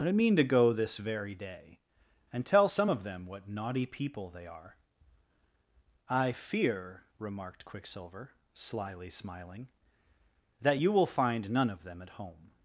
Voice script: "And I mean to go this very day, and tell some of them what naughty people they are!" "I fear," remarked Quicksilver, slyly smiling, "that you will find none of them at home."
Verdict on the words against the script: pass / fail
fail